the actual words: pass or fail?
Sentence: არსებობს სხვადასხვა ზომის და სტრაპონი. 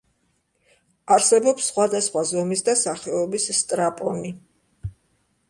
fail